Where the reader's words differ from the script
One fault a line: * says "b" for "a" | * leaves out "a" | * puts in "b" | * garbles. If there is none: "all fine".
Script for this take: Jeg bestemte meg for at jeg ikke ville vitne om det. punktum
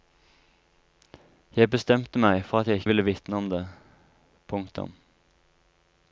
* leaves out "ikke"